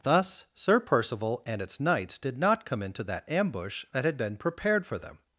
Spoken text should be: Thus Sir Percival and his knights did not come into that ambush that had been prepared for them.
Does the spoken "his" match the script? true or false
false